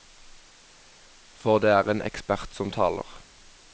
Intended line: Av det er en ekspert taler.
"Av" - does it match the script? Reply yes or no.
no